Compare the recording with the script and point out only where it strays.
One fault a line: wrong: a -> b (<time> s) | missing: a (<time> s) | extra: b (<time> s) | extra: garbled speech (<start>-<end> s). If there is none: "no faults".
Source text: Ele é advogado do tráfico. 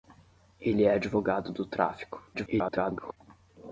extra: garbled speech (2.3-3.2 s)